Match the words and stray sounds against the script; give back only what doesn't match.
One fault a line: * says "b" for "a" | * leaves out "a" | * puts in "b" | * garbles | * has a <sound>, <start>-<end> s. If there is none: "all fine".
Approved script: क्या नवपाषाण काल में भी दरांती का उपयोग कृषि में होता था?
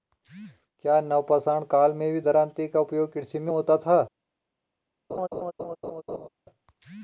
* has a laugh, 5.1-6.3 s